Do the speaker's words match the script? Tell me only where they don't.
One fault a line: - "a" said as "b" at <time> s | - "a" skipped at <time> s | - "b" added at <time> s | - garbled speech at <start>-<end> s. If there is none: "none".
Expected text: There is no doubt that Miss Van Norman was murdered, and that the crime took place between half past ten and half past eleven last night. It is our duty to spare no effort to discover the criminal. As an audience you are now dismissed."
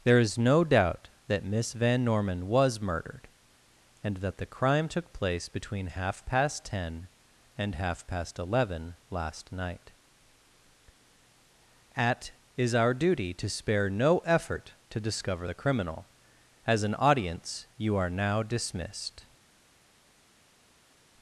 - "It" said as "At" at 11.9 s